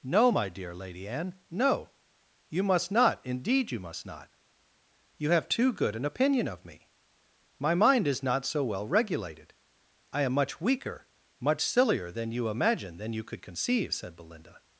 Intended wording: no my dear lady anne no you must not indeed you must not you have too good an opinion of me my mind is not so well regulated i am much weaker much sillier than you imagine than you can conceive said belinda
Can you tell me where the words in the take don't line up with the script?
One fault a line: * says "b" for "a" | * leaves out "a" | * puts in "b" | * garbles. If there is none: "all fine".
* says "could" for "can"